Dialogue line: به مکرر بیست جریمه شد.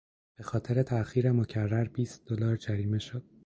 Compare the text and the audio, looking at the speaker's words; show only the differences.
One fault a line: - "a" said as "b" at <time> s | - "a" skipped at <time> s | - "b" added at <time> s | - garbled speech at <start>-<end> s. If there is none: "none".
- "خاطر تاخیر" added at 0.4 s
- "دلار" added at 2.3 s